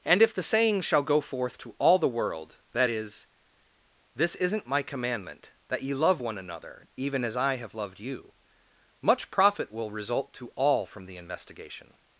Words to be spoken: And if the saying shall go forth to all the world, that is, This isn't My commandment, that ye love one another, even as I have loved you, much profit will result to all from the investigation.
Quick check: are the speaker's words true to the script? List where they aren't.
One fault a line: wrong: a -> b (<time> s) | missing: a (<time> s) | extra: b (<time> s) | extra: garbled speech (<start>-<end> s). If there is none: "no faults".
no faults